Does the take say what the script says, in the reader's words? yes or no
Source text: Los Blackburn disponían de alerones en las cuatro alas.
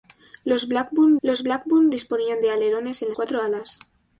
no